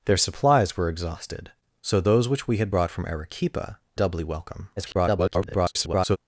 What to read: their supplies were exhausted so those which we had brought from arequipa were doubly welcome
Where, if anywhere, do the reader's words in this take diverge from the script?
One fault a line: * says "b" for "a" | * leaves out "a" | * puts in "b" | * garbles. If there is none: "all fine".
* leaves out "were"
* garbles